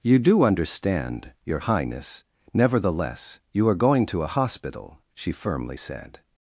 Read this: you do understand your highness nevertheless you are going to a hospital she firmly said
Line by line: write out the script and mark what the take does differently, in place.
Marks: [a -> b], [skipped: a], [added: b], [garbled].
you do understand your highness nevertheless you are going to a hospital she firmly said